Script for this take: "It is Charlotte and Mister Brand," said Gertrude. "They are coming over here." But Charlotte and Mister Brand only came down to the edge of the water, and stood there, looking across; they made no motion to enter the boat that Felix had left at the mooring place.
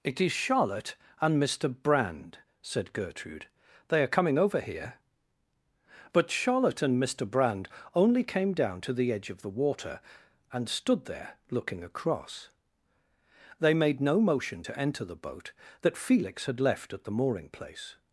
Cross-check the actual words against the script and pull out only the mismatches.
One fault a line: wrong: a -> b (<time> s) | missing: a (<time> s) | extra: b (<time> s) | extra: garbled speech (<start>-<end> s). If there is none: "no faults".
no faults